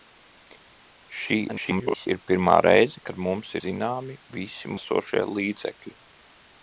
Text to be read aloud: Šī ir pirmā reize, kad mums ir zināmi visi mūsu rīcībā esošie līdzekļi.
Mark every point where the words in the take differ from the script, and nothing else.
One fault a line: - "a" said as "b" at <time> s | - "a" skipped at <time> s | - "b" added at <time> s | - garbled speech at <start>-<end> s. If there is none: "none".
- garbled speech at 1.5-2.1 s
- "ir" skipped at 3.5 s
- "mūsu rīcībā" skipped at 4.7 s